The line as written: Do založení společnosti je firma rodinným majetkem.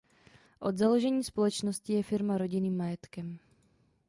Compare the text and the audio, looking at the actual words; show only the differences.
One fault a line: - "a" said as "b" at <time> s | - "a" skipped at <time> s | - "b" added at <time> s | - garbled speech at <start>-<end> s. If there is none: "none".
- "Do" said as "Od" at 0.6 s